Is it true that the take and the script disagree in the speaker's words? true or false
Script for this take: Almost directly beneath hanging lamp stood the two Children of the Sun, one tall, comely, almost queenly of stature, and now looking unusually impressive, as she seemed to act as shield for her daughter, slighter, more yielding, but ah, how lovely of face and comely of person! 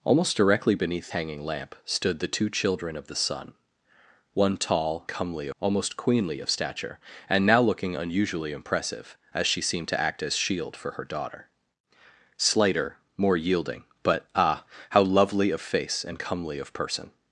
false